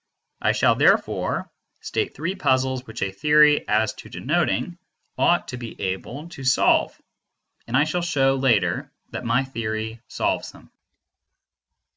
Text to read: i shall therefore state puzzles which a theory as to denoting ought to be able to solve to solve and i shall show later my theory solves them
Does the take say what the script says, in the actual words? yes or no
no